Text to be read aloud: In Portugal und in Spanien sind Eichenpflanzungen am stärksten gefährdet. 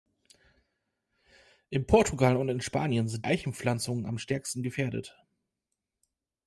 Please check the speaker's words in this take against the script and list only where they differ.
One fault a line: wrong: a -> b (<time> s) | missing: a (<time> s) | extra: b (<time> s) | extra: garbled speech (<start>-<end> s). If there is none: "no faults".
no faults